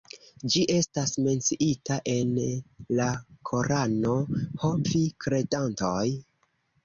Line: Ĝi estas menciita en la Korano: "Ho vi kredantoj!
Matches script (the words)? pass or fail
pass